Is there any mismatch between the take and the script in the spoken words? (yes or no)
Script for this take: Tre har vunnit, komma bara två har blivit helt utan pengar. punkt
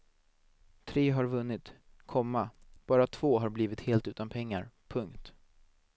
no